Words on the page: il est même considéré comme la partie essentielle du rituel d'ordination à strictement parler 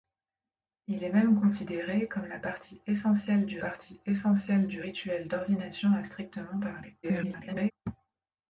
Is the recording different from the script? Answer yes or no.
yes